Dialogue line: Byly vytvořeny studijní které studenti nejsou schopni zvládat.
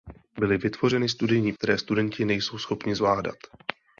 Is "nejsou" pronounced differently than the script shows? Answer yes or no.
no